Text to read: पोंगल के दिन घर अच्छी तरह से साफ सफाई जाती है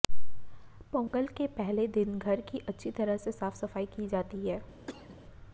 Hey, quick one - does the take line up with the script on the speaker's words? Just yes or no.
no